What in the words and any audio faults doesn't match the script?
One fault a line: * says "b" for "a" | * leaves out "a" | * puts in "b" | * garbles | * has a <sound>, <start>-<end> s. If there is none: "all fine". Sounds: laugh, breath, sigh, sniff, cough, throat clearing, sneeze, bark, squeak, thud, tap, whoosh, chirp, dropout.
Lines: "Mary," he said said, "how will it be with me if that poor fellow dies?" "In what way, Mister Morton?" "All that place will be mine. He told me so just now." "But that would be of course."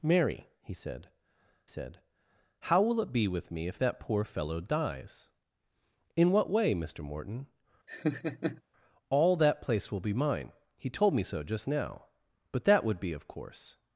* has a laugh, 7.9-8.6 s